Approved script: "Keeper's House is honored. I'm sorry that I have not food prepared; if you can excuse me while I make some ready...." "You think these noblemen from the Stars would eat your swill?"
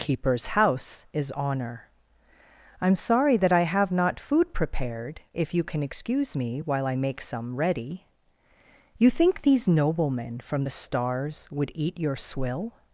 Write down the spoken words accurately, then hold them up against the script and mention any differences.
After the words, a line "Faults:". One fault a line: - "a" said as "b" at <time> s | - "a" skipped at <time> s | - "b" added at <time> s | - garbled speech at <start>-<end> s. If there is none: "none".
"Keeper's House is honor. I'm sorry that I have not food prepared; if you can excuse me while I make some ready...." "You think these noblemen from the Stars would eat your swill?"
Faults:
- "honored" said as "honor" at 1.3 s